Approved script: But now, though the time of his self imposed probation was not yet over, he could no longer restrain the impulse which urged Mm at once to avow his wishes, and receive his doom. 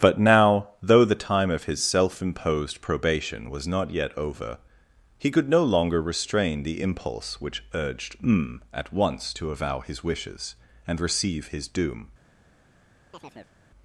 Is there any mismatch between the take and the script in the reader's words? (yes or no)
no